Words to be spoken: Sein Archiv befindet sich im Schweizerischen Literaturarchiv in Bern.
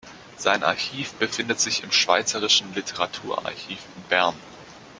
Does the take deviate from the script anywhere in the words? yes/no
no